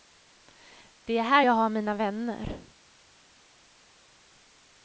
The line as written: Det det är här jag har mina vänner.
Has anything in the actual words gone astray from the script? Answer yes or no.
yes